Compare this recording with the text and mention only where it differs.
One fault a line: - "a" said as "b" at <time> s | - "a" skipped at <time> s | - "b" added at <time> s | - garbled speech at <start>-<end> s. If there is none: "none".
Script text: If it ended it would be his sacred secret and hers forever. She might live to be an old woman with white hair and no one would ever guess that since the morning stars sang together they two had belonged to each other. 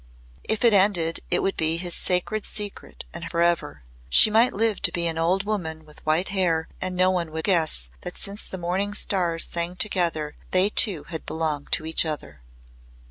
- "hers" skipped at 3.2 s
- "ever" skipped at 7.4 s